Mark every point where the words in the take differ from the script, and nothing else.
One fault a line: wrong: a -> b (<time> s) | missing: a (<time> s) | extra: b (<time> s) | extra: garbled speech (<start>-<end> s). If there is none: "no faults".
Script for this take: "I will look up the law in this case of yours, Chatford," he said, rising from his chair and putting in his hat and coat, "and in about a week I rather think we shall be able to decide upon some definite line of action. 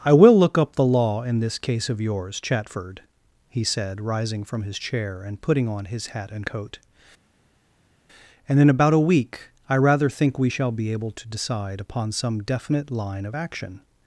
wrong: in -> on (5.7 s)